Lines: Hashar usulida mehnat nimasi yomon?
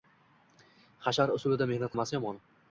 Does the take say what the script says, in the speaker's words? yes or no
yes